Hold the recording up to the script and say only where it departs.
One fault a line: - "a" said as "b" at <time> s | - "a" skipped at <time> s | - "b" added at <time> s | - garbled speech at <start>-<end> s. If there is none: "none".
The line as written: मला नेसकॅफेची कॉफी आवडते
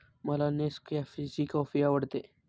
none